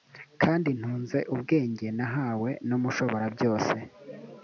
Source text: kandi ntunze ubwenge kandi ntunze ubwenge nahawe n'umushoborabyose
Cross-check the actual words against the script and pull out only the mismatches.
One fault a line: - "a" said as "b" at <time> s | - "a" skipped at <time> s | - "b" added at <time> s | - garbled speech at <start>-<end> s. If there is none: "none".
- "kandi ntunze ubwenge" skipped at 1.9 s